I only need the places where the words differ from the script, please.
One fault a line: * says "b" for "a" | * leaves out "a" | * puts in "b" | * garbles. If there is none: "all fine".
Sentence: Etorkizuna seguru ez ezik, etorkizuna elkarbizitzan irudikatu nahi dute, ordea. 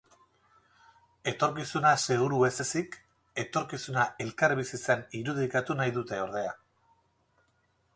all fine